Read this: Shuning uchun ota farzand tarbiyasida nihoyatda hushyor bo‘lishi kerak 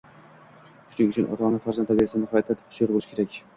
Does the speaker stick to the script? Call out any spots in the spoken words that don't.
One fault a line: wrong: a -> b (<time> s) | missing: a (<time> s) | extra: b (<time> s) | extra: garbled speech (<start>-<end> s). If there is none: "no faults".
extra: ona (1.5 s)